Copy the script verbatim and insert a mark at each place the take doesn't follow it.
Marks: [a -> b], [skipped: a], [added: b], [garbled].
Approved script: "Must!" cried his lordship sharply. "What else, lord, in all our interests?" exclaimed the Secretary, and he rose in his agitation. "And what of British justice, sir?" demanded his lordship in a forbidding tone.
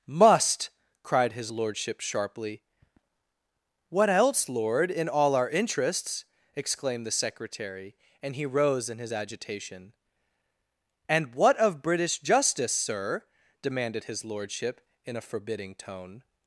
"Must!" cried his lordship sharply. "What else, lord, in all our interests?" exclaimed the Secretary, and he rose in his agitation. "And what of British justice, sir?" demanded his lordship in a forbidding tone.